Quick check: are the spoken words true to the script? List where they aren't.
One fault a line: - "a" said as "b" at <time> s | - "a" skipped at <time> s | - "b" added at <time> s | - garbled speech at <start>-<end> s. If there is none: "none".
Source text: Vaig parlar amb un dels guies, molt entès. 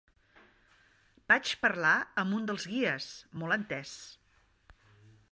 none